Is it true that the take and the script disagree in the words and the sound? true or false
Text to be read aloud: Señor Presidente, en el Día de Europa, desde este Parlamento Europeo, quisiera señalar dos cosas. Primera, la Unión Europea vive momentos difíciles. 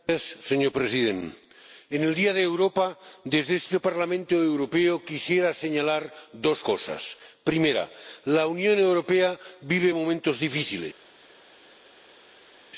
false